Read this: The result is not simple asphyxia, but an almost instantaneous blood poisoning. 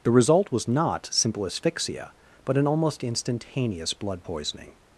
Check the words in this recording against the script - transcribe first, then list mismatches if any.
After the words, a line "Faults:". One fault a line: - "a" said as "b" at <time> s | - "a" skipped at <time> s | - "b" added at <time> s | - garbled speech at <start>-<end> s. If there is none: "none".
The result was not simple asphyxia, but an almost instantaneous blood poisoning.
Faults:
- "is" said as "was" at 0.5 s